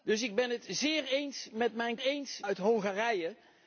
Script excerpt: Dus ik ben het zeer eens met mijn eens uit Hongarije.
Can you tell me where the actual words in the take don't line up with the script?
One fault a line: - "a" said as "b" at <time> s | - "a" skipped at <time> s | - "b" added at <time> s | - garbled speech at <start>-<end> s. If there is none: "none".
none